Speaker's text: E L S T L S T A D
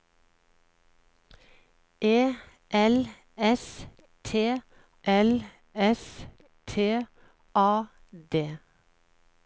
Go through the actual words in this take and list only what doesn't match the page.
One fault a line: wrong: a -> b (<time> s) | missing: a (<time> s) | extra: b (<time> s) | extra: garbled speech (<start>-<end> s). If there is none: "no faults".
no faults